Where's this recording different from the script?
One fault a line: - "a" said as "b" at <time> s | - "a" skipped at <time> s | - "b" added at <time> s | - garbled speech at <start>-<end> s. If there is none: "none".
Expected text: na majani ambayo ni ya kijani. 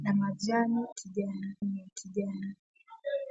- "ambayo" said as "kijani" at 0.9 s